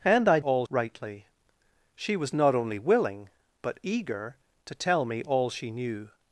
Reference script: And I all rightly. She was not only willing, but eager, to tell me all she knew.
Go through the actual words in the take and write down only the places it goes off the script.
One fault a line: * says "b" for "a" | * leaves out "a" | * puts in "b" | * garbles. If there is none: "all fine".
all fine